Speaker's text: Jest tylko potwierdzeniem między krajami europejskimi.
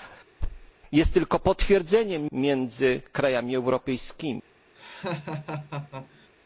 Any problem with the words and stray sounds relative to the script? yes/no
yes